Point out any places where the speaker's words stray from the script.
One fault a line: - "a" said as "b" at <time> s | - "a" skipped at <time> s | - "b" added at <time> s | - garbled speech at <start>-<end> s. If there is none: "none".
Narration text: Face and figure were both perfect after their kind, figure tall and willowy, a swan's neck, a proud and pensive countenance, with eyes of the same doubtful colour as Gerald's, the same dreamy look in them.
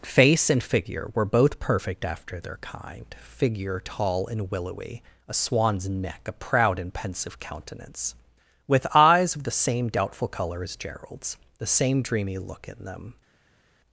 none